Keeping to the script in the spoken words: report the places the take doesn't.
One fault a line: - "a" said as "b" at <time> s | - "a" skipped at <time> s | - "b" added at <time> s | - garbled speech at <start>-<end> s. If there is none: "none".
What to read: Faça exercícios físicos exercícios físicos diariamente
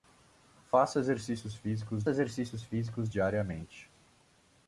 none